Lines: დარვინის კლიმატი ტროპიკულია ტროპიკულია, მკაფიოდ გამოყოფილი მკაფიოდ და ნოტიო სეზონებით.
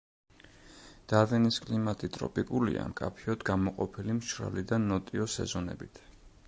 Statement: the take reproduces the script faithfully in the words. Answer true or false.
false